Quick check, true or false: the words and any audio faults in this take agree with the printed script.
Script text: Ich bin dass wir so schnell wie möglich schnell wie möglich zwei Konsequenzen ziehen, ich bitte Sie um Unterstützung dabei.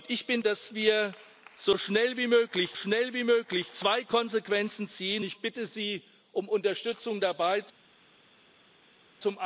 true